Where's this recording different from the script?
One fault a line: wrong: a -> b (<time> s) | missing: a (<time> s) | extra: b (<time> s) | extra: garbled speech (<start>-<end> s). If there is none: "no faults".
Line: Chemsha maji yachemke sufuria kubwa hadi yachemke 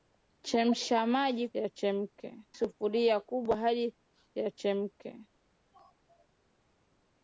no faults